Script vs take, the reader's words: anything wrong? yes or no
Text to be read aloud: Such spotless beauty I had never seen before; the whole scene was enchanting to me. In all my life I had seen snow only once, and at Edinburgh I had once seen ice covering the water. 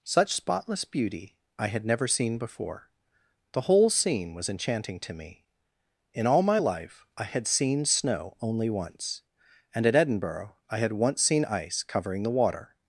no